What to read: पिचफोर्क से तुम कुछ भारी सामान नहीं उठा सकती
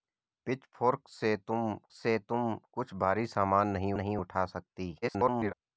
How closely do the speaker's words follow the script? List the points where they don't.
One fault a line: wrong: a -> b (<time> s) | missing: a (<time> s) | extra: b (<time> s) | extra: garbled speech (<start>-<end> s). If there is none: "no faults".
extra: से तुम (1.9 s)
extra: नहीं (3.9 s)
extra: garbled speech (5.0-5.5 s)